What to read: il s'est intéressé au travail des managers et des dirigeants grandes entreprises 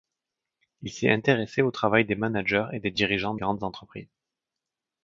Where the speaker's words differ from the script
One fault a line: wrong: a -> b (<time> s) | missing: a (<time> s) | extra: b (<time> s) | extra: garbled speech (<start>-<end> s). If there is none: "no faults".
no faults